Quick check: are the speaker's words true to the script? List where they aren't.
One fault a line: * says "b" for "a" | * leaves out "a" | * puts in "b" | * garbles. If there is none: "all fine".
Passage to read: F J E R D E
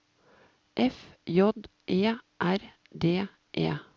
all fine